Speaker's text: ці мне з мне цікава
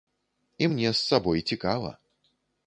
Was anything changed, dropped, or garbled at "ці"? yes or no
yes